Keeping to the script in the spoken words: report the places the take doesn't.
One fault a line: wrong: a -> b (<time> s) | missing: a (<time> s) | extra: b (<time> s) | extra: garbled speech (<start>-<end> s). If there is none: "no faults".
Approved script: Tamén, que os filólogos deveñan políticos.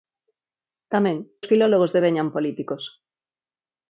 missing: que (1.2 s)